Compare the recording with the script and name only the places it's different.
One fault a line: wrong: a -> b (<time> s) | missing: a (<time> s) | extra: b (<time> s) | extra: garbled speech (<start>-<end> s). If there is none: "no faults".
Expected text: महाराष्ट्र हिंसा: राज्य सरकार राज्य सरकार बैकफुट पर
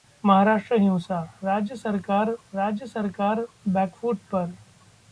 no faults